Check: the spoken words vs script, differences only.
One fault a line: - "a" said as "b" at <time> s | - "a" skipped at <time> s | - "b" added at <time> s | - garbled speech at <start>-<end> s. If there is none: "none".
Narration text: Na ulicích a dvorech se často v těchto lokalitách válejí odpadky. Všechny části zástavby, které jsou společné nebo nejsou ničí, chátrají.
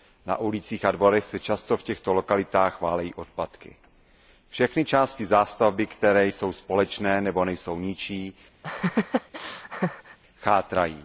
none